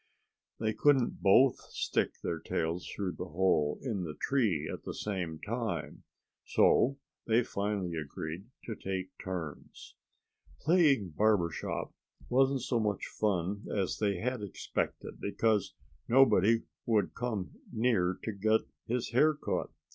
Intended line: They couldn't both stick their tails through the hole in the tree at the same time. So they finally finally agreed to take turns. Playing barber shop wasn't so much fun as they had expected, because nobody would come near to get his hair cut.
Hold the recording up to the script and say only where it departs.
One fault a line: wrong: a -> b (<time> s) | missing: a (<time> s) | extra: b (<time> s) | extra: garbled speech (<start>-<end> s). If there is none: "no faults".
missing: finally (7.9 s)